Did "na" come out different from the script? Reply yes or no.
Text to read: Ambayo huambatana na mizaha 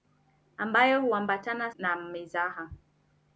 no